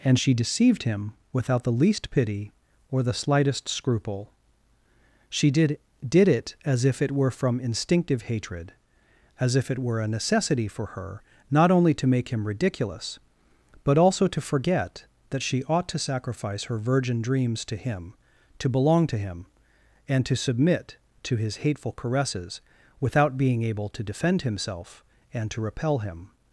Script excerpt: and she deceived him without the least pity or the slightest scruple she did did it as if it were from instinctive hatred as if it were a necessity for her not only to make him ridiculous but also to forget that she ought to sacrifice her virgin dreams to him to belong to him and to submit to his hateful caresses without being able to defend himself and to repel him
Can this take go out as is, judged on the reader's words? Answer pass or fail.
pass